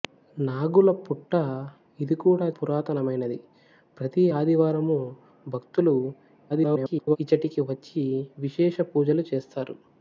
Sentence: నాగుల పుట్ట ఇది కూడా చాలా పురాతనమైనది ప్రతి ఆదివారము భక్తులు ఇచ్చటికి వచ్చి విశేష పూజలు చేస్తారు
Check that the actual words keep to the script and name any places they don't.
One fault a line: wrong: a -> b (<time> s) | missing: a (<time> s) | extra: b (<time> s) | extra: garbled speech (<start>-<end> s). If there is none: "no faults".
missing: చాలా (2.5 s)
extra: garbled speech (6.5-7.2 s)